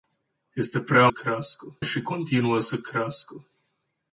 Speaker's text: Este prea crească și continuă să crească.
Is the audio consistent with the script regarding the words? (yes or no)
yes